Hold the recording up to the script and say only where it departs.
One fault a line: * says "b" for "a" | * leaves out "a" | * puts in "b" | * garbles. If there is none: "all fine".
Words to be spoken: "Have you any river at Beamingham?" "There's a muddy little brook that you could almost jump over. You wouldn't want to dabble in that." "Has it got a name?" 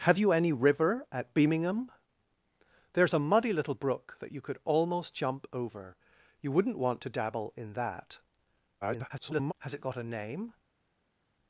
* garbles